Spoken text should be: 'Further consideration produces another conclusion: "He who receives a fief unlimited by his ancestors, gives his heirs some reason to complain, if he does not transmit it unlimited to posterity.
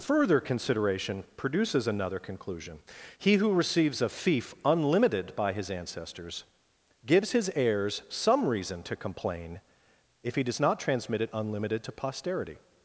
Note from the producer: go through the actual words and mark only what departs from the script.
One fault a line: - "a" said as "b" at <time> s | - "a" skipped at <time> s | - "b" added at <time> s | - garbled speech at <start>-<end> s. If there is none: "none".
none